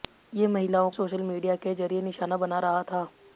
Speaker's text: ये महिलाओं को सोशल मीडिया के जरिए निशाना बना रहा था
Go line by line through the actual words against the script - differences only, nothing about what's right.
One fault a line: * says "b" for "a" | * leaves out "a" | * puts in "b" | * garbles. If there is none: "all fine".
* leaves out "को"